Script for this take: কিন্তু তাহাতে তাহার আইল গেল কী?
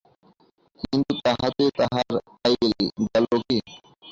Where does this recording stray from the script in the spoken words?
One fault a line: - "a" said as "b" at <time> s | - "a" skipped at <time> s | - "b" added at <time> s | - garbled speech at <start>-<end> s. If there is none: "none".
none